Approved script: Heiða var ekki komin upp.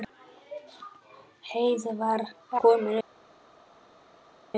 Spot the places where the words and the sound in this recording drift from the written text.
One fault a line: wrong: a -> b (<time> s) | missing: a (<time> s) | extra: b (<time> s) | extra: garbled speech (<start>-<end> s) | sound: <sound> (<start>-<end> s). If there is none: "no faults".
missing: ekki (2.2 s)